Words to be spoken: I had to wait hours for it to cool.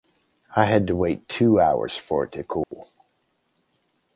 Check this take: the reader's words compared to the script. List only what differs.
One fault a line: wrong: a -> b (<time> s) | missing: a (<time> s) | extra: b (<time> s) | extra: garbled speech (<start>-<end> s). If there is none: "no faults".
extra: two (1.3 s)